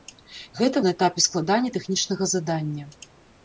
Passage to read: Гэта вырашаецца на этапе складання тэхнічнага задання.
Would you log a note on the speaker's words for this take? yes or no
yes